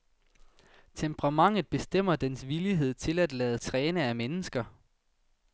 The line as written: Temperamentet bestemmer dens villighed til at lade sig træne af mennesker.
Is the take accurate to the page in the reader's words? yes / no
no